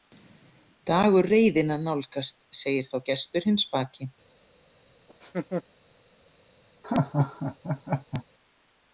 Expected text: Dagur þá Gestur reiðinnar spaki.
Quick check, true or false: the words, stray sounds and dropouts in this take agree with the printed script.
false